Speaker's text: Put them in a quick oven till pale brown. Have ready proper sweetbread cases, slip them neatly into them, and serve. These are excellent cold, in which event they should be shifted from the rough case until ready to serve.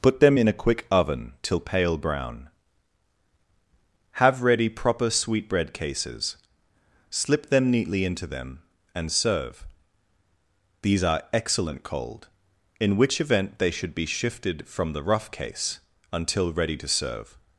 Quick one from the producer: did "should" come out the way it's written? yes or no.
yes